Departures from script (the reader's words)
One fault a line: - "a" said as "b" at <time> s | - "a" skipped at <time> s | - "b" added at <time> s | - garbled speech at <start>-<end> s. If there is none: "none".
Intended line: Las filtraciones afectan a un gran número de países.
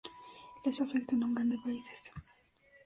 - "filtraciones" skipped at 0.8 s
- "número" skipped at 1.5 s